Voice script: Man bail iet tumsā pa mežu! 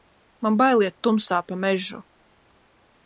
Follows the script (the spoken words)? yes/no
yes